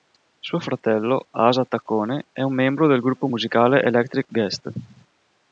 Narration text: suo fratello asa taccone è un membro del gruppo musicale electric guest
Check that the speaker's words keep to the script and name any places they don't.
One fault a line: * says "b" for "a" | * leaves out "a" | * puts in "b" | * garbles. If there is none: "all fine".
all fine